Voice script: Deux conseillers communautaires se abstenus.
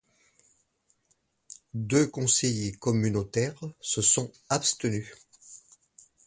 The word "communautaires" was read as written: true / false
true